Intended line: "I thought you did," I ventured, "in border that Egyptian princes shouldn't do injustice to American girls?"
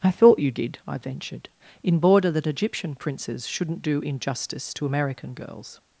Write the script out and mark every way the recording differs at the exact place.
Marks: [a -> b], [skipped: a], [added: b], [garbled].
"I thought you did," I ventured, "in border that Egyptian princes shouldn't do injustice to American girls?"